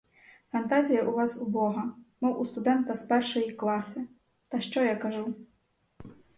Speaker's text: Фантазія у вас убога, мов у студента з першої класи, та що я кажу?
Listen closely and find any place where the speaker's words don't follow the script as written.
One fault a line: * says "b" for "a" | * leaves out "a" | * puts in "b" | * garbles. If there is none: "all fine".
all fine